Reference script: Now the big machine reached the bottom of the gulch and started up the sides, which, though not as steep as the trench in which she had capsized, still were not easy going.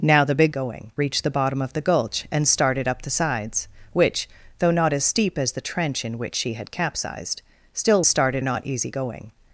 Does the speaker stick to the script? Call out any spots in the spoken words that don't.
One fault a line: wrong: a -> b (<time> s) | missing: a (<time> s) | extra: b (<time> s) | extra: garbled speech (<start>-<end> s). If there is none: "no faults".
wrong: machine -> going (0.5 s)
wrong: were -> started (8.1 s)